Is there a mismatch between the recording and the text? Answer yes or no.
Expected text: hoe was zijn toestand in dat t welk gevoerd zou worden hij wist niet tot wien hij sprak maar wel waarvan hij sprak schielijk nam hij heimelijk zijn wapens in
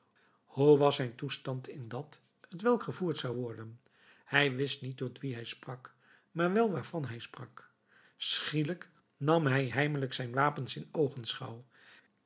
no